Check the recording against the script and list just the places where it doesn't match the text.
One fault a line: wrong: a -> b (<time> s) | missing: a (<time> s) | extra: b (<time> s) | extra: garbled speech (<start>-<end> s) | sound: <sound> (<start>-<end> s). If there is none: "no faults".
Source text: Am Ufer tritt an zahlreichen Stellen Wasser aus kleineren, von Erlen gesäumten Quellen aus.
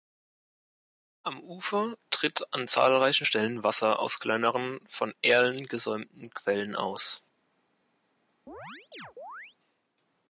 sound: chirp (8.5-9.6 s)